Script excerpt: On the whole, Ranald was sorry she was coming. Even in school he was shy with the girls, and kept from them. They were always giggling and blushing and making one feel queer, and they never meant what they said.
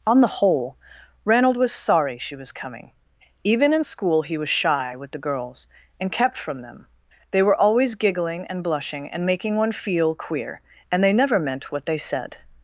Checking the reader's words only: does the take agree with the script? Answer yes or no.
yes